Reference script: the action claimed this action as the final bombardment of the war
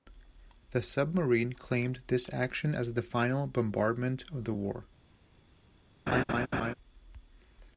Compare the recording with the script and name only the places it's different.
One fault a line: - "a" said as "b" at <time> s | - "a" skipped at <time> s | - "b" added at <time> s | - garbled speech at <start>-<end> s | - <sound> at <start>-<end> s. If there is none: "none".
- "action" said as "submarine" at 0.8 s
- laugh at 6.1-6.7 s